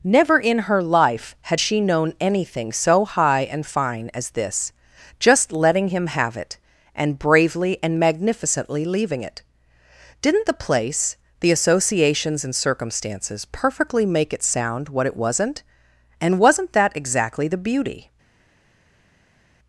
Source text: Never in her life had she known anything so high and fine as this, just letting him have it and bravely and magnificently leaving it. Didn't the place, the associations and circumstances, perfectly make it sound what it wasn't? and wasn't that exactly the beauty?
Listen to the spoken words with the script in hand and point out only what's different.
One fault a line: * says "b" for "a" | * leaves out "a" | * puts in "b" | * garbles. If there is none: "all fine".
all fine